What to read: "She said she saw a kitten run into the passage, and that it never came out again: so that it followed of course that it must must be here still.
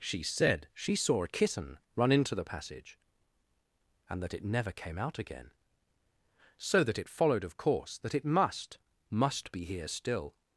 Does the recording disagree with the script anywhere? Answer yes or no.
no